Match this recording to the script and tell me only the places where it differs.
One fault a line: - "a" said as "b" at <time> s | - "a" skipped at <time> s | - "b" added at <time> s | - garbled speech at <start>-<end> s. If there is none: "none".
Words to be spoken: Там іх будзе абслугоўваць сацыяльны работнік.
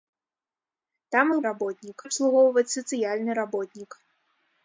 - "будзе" said as "работнік" at 1.5 s